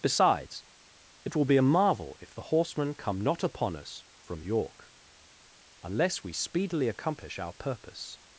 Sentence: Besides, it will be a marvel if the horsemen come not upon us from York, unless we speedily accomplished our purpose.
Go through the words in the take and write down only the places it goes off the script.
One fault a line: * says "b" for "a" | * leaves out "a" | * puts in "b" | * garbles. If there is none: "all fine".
* says "accomplish" for "accomplished"